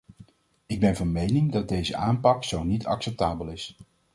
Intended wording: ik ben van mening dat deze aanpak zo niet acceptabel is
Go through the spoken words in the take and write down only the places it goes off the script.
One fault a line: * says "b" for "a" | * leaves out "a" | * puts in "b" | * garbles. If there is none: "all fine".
all fine